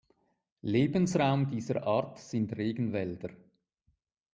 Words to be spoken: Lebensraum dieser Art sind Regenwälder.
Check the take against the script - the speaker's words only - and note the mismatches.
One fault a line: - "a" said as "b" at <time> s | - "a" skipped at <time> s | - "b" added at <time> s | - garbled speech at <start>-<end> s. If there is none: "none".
none